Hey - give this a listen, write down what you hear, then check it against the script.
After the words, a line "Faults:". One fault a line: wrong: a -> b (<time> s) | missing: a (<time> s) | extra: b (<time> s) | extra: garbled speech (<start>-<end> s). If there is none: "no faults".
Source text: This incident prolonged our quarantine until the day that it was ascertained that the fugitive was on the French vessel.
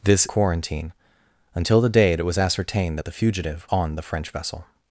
This quarantine until the day it was ascertained that the fugitive on the French vessel.
Faults:
missing: incident prolonged our (0.3 s)
missing: that (2.2 s)
missing: was (3.7 s)